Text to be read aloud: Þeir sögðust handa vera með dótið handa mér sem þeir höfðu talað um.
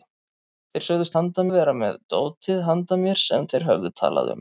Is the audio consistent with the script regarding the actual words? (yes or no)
yes